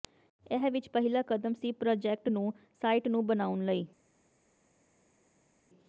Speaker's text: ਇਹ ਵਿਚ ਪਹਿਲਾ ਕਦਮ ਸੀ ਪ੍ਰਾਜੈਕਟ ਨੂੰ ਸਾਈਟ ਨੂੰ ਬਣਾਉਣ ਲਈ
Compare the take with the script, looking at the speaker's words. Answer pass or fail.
pass